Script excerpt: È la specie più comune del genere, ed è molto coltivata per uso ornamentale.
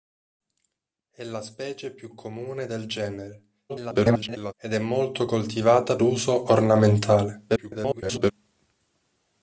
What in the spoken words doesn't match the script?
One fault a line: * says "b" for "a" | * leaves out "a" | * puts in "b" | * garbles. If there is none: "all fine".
* garbles
* leaves out "per"
* garbles